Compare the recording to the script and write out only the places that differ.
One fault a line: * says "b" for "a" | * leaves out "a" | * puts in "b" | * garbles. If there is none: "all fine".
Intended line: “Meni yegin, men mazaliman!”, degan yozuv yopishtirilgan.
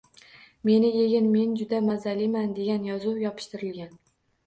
* puts in "juda"